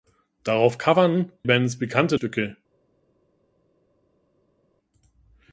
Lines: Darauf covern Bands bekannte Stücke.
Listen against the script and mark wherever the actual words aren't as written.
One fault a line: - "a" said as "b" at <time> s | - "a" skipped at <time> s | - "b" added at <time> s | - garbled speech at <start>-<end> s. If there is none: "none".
none